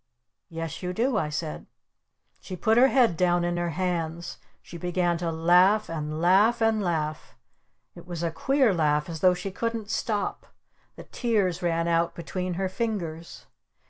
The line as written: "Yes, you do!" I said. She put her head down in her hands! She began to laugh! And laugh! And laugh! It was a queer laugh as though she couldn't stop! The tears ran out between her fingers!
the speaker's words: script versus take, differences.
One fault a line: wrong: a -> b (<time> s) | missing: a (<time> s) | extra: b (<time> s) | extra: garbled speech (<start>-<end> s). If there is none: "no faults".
no faults